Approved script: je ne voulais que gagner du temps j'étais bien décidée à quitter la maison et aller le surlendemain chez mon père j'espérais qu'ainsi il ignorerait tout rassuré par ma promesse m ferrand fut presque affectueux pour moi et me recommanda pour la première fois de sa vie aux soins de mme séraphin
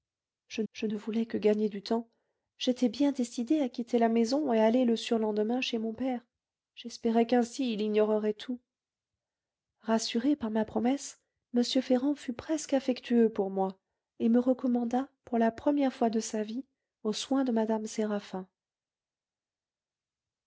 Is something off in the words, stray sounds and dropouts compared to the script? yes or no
yes